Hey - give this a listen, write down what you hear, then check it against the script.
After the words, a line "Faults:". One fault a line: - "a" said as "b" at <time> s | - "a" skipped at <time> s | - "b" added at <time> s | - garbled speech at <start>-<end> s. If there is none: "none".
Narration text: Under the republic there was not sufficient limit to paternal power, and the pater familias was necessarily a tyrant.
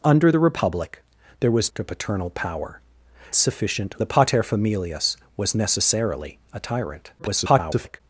Under the republic there was to paternal power, sufficient the pater familias was necessarily a tyrant. [garbled]
Faults:
- "not sufficient limit" skipped at 1.7 s
- "and" said as "sufficient" at 3.3 s
- garbled speech at 7.2-8.0 s